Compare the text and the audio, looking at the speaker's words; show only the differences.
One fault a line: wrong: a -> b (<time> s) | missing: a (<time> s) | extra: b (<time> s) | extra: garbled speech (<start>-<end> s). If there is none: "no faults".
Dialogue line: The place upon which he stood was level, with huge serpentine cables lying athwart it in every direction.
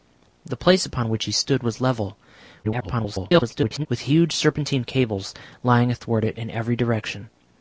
extra: garbled speech (2.6-3.9 s)